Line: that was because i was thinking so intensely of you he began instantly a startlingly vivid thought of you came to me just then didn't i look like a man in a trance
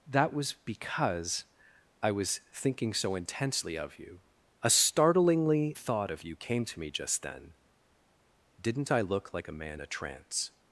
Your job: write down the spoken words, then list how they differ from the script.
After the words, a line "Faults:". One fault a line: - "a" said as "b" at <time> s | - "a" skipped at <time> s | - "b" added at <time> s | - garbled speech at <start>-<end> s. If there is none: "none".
that was because i was thinking so intensely of you a startlingly thought of you came to me just then didn't i look like a man a trance
Faults:
- "he began instantly" skipped at 4.2 s
- "vivid" skipped at 5.8 s
- "in" skipped at 9.8 s